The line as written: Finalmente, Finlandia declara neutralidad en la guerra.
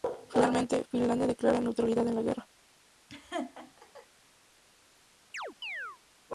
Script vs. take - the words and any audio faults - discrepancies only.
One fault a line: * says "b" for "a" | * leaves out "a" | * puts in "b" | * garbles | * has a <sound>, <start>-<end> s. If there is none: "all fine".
* has a laugh, 3.1-4.1 s
* has a chirp, 5.3-6.0 s